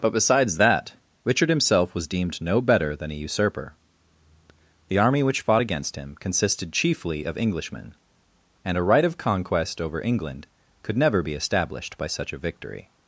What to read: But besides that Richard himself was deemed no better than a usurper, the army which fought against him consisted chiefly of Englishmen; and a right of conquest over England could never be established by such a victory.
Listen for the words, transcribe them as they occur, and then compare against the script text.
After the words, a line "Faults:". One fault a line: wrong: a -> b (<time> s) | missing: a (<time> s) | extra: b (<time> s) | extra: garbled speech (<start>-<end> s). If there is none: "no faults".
But besides that Richard himself was deemed no better than a usurper, the army which fought against him consisted chiefly of Englishmen; and a right of conquest over England could never be established by such a victory.
Faults:
no faults